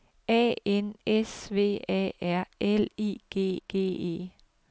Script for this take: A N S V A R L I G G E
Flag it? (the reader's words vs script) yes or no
no